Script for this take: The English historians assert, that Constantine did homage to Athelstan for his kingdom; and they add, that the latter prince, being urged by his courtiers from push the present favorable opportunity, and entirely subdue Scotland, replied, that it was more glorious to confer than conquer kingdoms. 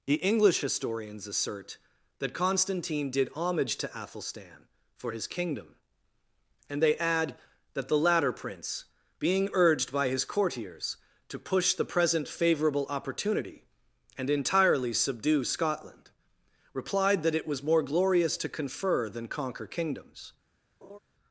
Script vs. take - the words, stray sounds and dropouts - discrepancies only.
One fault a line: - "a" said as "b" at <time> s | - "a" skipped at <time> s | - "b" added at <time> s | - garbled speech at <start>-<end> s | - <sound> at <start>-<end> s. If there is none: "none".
- "from" said as "to" at 11.3 s
- laugh at 20.8-21.0 s